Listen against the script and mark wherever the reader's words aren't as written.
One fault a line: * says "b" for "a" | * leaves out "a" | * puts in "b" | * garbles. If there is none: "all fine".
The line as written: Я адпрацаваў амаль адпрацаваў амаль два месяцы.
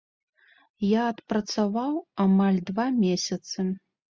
* leaves out "адпрацаваў амаль"